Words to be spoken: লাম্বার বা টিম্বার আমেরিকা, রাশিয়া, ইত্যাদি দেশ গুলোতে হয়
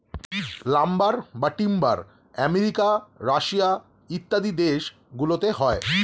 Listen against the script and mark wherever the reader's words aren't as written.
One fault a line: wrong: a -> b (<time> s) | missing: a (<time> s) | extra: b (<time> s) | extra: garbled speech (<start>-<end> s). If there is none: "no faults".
no faults